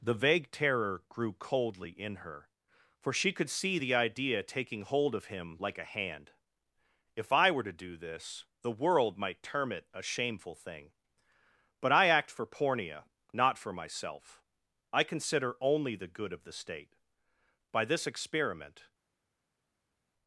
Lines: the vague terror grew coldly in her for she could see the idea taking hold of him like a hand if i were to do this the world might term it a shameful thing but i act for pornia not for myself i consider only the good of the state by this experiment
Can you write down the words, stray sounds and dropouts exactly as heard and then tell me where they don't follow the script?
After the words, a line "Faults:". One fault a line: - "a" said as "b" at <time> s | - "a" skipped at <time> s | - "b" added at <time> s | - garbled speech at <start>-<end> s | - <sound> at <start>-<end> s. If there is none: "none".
the vague terror grew coldly in her for she could see the idea taking hold of him like a hand if i were to do this the world might term it a shameful thing but i act for pornia not for myself i consider only the good of the state by this experiment
Faults:
none